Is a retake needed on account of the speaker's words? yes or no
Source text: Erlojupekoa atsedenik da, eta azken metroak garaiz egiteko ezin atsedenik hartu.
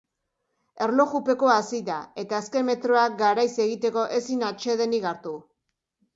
yes